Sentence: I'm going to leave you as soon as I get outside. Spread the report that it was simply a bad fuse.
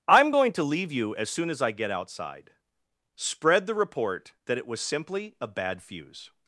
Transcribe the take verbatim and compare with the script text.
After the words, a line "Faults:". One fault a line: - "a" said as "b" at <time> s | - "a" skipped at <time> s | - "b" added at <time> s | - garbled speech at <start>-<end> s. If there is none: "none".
I'm going to leave you as soon as I get outside. Spread the report that it was simply a bad fuse.
Faults:
none